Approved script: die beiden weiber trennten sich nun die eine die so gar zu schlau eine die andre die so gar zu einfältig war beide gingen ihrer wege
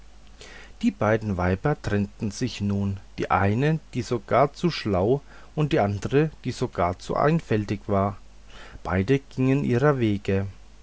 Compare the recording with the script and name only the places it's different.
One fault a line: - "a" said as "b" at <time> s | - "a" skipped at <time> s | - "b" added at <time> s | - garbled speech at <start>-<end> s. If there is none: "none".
- "eine" said as "und" at 5.5 s